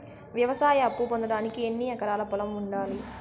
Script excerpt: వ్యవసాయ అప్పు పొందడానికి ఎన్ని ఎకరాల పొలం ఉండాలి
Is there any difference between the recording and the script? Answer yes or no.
no